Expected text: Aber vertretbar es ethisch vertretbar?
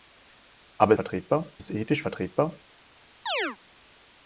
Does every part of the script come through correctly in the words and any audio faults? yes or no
no